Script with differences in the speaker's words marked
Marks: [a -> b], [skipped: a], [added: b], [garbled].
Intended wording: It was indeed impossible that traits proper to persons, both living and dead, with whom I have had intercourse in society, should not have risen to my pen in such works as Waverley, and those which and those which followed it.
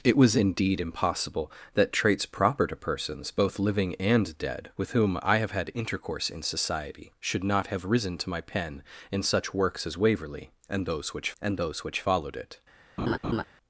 It was indeed impossible that traits proper to persons, both living and dead, with whom I have had intercourse in society, should not have risen to my pen in such works as Waverley, and those which and those which followed it.